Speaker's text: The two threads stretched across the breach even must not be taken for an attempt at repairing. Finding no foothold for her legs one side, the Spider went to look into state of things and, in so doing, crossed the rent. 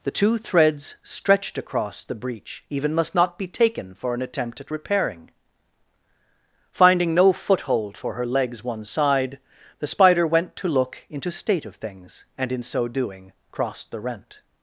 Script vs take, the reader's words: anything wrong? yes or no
no